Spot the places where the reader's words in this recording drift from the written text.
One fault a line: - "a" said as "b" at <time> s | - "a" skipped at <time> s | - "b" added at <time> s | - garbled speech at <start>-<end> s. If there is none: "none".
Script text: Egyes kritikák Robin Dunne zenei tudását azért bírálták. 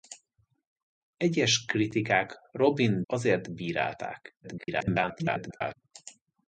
- "Dunne zenei tudását" skipped at 3.0 s
- garbled speech at 4.4-5.7 s